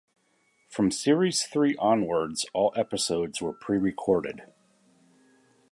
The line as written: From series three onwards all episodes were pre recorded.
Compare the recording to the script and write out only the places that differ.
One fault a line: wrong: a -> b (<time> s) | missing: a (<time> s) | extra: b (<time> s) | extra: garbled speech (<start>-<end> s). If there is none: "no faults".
no faults